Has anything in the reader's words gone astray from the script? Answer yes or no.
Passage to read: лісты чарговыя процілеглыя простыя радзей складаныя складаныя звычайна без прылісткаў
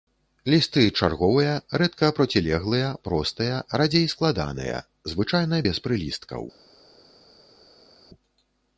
yes